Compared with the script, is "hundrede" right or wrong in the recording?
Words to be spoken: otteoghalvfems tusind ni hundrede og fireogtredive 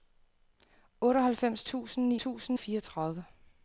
wrong